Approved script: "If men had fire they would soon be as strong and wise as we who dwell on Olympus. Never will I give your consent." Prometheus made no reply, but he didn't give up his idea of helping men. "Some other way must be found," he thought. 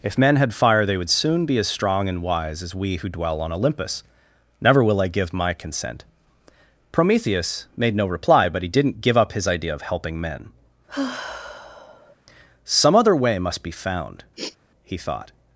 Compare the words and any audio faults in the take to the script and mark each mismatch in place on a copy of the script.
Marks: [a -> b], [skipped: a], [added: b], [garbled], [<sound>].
"If men had fire they would soon be as strong and wise as we who dwell on Olympus. Never will I give [your -> my] consent." Prometheus made no reply, but he didn't give up his idea of helping men. [sigh] "Some other way must be found," [sniff] he thought.